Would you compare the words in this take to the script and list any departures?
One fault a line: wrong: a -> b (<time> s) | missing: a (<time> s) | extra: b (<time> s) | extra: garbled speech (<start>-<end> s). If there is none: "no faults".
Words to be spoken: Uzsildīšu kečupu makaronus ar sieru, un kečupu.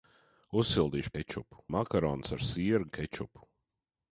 no faults